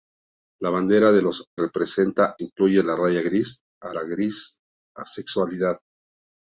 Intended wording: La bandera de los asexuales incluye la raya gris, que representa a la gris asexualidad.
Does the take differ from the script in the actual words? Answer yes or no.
yes